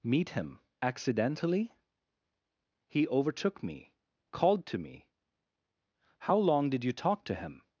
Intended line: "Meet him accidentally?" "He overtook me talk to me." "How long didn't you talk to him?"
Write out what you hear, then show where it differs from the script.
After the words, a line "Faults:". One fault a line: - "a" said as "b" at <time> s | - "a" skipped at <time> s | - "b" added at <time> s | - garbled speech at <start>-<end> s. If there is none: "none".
"Meet him accidentally?" "He overtook me called to me." "How long did you talk to him?"
Faults:
- "talk" said as "called" at 4.3 s
- "didn't" said as "did" at 6.7 s